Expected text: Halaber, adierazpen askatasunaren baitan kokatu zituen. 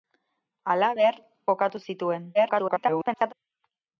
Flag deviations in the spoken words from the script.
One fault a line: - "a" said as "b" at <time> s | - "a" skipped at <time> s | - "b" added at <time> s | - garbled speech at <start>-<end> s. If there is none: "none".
- "adierazpen askatasunaren baitan" skipped at 1.2 s
- garbled speech at 2.3-3.3 s